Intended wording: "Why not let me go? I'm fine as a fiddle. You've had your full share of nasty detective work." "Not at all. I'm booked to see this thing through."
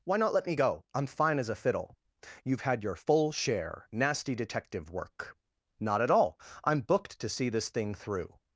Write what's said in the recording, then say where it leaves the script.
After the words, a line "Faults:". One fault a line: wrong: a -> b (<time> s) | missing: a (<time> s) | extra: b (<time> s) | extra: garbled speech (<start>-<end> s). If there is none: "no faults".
"Why not let me go? I'm fine as a fiddle. You've had your full share nasty detective work." "Not at all. I'm booked to see this thing through."
Faults:
missing: of (3.9 s)